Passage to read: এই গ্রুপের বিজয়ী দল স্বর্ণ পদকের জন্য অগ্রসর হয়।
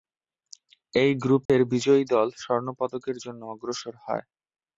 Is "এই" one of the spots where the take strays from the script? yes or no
no